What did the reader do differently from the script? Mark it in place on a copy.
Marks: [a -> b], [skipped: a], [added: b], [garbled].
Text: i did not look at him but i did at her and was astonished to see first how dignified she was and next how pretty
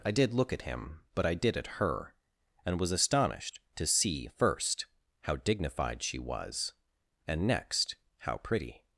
i did [skipped: not] look at him but i did at her and was astonished to see first how dignified she was and next how pretty